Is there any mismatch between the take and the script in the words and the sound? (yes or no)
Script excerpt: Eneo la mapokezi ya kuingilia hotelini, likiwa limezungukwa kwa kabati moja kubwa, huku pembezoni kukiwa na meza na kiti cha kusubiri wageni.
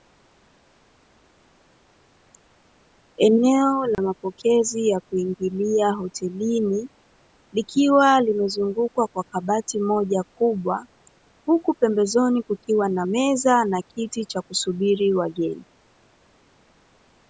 yes